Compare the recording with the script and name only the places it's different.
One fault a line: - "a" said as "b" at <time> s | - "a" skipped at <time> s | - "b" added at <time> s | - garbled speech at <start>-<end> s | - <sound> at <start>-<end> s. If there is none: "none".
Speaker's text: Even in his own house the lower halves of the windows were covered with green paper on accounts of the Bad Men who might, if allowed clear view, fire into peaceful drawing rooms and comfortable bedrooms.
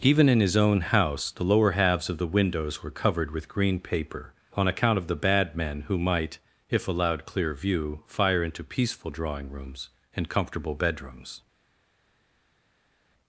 - "accounts" said as "account" at 4.7 s